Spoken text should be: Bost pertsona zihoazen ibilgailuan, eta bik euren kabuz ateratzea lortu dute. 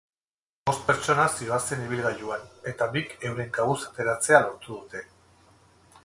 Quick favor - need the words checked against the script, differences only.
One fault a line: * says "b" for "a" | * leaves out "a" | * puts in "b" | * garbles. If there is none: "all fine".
all fine